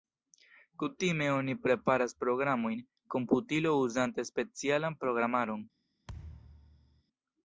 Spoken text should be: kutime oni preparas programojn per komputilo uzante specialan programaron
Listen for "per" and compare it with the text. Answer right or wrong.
wrong